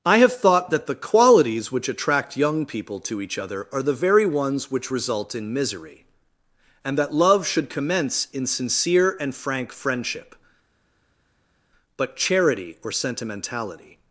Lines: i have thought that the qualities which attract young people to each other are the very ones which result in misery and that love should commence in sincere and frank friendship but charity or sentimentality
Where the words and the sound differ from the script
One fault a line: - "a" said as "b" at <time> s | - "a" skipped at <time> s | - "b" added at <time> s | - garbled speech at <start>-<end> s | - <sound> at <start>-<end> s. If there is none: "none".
none